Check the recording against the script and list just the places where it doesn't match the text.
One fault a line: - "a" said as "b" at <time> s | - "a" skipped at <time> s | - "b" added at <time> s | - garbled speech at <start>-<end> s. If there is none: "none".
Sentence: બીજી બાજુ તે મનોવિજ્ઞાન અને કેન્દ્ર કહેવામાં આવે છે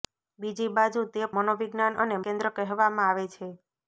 none